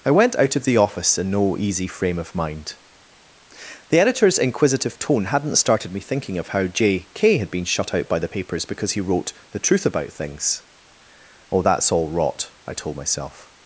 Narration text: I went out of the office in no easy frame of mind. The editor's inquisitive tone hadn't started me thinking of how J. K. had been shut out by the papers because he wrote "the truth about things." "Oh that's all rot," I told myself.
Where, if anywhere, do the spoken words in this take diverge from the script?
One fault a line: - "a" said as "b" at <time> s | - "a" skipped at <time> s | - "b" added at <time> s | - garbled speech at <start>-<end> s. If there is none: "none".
none